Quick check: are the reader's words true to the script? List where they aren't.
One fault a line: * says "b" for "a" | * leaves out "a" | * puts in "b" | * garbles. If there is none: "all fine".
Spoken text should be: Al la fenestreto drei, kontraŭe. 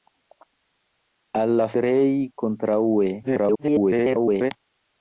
* leaves out "fenestreto"
* garbles